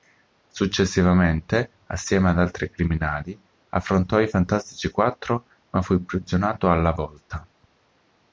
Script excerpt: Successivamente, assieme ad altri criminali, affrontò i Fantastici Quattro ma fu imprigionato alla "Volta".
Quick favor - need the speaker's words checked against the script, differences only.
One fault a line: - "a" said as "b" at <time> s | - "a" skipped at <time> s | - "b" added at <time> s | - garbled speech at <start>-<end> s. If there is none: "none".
none